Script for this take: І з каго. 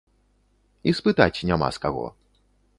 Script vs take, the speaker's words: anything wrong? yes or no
yes